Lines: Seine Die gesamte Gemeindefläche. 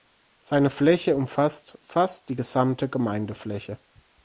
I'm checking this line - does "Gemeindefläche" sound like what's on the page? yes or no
yes